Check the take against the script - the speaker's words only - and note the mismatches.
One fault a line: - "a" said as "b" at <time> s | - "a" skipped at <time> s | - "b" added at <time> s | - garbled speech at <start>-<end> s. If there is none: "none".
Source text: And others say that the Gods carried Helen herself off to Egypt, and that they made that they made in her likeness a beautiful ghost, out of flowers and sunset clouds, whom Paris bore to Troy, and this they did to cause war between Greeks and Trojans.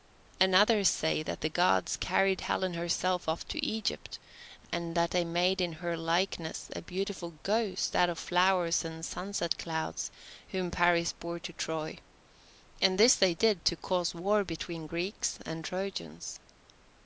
- "that they made" skipped at 5.6 s